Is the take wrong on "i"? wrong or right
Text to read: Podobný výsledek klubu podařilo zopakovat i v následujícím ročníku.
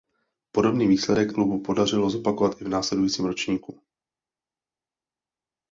right